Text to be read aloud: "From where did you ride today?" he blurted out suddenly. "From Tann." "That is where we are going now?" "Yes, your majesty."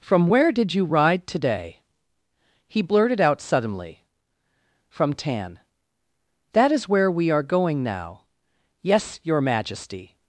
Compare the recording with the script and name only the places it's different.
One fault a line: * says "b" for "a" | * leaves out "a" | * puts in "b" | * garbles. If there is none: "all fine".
all fine